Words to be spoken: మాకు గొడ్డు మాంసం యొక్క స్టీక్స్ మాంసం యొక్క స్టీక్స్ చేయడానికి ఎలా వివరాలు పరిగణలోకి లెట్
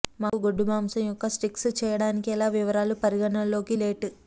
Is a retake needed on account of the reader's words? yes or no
yes